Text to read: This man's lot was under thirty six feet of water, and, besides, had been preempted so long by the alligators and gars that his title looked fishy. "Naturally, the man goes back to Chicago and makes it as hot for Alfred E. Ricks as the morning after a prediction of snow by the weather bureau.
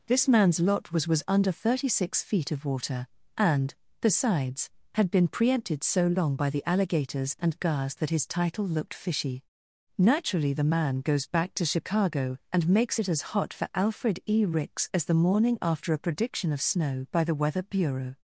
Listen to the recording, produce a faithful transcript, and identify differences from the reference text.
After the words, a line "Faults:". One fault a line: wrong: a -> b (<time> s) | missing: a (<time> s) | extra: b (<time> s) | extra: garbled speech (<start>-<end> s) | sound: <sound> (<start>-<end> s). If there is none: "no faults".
This man's lot was was under thirty six feet of water, and, besides, had been preempted so long by the alligators and gars that his title looked fishy. "Naturally, the man goes back to Chicago and makes it as hot for Alfred E. Ricks as the morning after a prediction of snow by the weather bureau.
Faults:
extra: was (1.1 s)